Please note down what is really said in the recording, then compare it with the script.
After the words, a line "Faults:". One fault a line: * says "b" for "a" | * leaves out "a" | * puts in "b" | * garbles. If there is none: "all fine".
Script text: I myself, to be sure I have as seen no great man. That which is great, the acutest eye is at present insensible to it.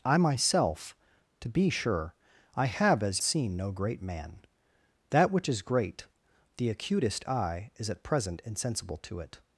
I myself, to be sure I have as seen no great man. That which is great, the acutest eye is at present insensible to it.
Faults:
all fine